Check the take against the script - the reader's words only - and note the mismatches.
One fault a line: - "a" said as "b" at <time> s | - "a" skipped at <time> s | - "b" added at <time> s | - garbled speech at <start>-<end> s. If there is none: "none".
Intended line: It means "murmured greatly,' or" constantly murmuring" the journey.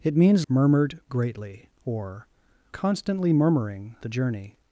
none